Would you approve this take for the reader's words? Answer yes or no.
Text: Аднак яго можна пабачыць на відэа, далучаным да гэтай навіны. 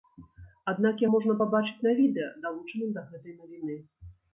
no